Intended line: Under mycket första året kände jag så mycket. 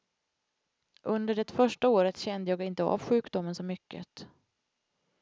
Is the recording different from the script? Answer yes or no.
yes